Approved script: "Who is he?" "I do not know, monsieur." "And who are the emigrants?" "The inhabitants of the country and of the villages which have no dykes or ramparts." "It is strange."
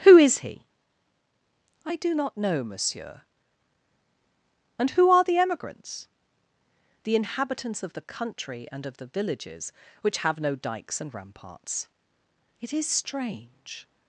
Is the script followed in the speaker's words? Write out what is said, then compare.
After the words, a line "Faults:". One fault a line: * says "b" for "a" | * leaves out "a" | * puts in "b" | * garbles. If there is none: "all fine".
"Who is he?" "I do not know, monsieur." "And who are the emigrants?" "The inhabitants of the country and of the villages which have no dykes and ramparts." "It is strange."
Faults:
* says "and" for "or"